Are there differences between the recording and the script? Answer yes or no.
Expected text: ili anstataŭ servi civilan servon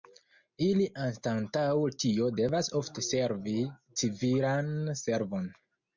yes